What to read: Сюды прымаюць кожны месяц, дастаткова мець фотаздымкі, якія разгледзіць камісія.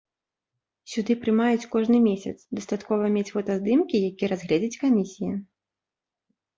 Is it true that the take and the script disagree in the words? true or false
false